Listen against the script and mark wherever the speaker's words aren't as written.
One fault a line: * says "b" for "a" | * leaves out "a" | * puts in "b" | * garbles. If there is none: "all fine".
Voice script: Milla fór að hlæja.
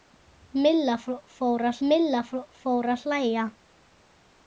* puts in "milla fór að"